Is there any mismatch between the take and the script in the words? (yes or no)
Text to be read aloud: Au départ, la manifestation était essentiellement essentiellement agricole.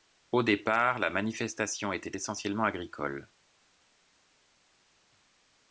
yes